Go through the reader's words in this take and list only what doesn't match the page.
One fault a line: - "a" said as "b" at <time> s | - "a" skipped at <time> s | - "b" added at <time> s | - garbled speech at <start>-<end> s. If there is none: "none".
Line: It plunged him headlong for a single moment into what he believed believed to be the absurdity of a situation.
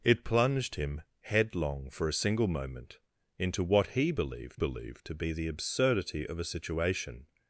none